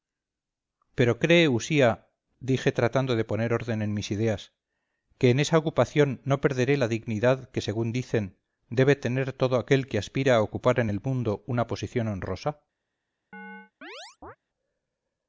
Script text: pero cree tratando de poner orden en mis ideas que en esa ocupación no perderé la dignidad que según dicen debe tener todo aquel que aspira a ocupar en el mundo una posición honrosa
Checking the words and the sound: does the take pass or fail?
fail